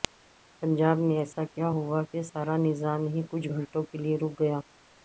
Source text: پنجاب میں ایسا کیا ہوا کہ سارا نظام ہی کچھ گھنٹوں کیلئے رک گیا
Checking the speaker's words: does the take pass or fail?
pass